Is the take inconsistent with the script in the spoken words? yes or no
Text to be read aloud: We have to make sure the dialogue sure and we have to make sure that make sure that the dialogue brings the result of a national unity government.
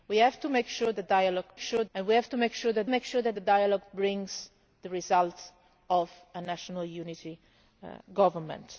no